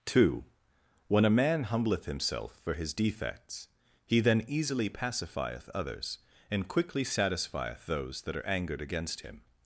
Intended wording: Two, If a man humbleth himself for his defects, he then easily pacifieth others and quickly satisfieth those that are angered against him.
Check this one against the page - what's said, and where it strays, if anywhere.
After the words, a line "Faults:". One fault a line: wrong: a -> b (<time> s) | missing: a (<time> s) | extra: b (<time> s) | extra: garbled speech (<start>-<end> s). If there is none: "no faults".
Two, When a man humbleth himself for his defects, he then easily pacifieth others and quickly satisfieth those that are angered against him.
Faults:
wrong: If -> When (1.1 s)